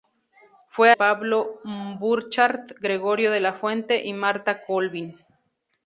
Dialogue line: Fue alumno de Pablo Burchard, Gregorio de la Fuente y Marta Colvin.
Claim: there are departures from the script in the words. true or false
true